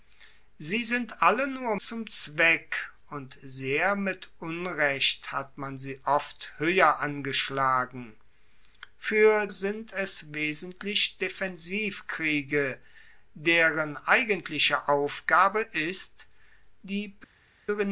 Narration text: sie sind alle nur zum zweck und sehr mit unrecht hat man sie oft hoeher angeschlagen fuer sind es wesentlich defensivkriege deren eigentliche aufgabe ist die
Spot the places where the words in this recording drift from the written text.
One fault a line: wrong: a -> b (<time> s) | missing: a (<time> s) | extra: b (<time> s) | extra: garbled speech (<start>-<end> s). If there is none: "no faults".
no faults